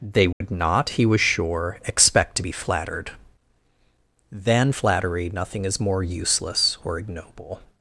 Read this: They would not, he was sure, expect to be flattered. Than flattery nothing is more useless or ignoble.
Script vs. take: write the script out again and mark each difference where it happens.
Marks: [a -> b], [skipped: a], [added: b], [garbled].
They would not, he was sure, expect to be flattered. Than flattery nothing is more useless or ignoble.